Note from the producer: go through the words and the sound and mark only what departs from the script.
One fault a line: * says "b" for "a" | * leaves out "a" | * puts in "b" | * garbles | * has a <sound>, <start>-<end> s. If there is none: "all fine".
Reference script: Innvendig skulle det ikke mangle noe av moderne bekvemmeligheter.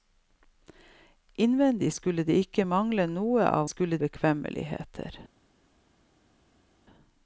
* says "skulle" for "moderne"